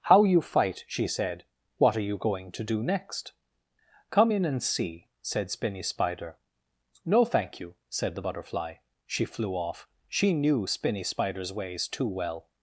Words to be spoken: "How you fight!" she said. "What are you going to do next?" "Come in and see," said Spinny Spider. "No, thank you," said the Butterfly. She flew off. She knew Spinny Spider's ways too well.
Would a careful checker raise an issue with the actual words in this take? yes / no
no